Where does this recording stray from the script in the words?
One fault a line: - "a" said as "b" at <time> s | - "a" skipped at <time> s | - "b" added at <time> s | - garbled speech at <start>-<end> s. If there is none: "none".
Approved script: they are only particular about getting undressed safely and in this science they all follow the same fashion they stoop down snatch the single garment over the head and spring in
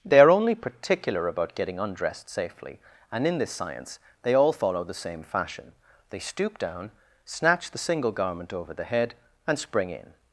none